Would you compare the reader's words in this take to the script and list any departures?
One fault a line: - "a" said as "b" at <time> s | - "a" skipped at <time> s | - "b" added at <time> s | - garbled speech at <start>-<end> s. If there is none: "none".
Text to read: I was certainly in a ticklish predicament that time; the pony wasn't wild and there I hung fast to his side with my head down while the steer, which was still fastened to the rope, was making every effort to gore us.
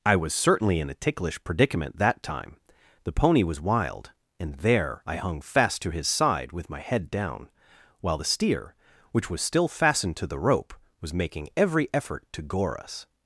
- "wasn't" said as "was" at 3.4 s